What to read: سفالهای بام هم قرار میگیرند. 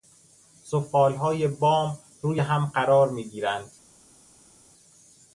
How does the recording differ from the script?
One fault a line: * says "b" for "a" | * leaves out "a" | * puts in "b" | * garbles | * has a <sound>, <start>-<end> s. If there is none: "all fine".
* puts in "روی"